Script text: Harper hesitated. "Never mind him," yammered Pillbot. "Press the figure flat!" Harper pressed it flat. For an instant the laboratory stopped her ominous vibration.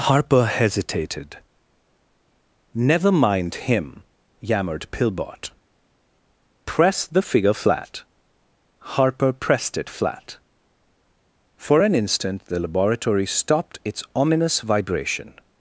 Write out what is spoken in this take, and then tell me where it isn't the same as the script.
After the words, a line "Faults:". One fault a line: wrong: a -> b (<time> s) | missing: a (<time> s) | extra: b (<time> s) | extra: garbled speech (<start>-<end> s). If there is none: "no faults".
Harper hesitated. "Never mind him," yammered Pillbot. "Press the figure flat!" Harper pressed it flat. For an instant the laboratory stopped its ominous vibration.
Faults:
wrong: her -> its (13.8 s)